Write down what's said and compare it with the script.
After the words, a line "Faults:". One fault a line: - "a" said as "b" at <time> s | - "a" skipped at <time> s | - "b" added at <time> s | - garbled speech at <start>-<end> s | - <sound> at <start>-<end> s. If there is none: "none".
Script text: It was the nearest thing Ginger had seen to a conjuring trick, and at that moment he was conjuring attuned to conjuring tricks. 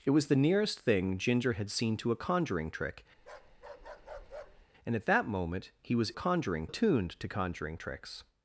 It was the nearest thing Ginger had seen to a conjuring trick, and at that moment he was conjuring attuned to conjuring tricks.
Faults:
- bark at 3.2-4.7 s